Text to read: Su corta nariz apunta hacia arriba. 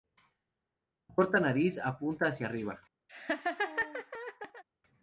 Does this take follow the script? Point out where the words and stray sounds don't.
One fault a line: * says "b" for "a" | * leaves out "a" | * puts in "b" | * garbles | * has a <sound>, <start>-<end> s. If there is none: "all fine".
* has a laugh, 3.1-4.6 s